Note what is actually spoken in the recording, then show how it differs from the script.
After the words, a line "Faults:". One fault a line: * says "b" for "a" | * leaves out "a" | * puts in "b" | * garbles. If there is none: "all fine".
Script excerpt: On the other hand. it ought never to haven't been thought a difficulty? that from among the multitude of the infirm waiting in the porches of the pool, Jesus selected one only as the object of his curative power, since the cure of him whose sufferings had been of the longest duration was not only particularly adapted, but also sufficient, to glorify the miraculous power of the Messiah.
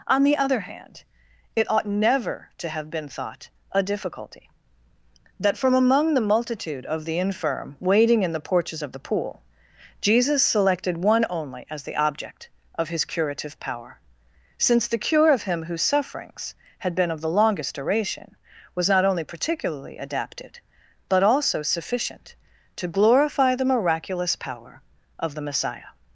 On the other hand. it ought never to have been thought a difficulty? that from among the multitude of the infirm waiting in the porches of the pool, Jesus selected one only as the object of his curative power, since the cure of him whose sufferings had been of the longest duration was not only particularly adapted, but also sufficient, to glorify the miraculous power of the Messiah.
Faults:
* says "have" for "haven't"